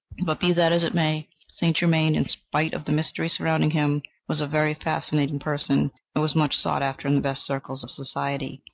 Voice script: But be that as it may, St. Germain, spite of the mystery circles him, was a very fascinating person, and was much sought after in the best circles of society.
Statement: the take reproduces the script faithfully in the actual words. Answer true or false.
false